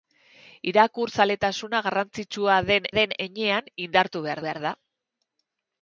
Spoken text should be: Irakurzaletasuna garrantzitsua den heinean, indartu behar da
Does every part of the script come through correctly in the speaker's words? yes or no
no